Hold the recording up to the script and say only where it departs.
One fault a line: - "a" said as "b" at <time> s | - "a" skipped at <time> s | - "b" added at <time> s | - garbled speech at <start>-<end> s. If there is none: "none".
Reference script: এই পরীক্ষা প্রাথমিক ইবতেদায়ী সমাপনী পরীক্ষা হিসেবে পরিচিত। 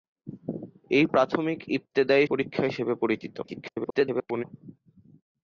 - "পরীক্ষা" skipped at 1.1 s
- "সমাপনী" skipped at 2.3 s
- garbled speech at 3.4-4.4 s